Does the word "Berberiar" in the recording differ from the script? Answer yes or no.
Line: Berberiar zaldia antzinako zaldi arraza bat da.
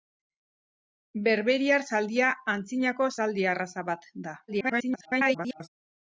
no